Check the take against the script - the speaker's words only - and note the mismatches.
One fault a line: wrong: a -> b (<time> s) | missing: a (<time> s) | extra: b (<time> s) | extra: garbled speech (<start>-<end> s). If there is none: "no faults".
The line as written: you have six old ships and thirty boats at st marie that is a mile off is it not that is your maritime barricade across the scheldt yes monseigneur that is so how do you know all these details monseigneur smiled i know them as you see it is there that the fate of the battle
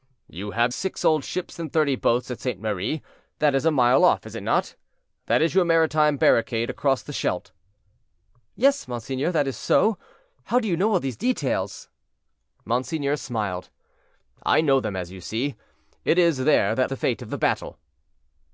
no faults